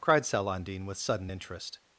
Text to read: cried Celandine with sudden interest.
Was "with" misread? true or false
false